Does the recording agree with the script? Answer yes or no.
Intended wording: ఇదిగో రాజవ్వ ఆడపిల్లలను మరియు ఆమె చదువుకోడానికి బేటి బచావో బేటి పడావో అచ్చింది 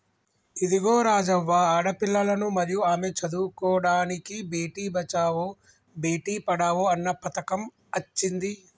no